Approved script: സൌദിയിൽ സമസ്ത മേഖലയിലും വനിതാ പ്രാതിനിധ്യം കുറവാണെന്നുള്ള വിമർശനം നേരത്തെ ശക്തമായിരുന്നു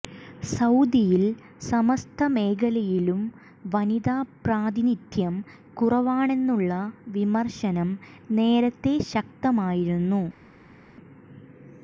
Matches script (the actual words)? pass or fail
pass